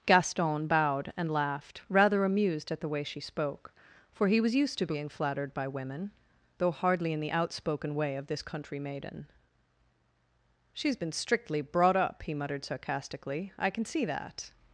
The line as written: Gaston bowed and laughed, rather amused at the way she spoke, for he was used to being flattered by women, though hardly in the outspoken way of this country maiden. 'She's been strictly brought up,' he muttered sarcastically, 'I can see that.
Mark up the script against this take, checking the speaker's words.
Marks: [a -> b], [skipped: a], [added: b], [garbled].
Gaston bowed and laughed, rather amused at the way she spoke, for he was used to being flattered by women, though hardly in the outspoken way of this country maiden. 'She's been strictly brought up,' he muttered sarcastically, 'I can see that.